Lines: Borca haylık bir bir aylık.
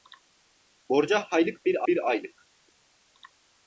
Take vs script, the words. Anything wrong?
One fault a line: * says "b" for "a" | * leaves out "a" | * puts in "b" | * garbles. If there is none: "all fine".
all fine